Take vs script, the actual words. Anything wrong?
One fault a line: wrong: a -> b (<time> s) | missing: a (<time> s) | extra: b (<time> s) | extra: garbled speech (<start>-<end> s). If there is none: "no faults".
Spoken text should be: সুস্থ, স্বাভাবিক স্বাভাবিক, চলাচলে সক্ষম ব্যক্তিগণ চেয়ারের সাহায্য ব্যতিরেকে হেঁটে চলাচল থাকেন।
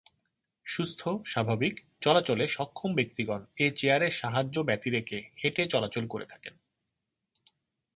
missing: স্বাভাবিক (1.8 s)
extra: এ (3.6 s)
extra: করে (6.1 s)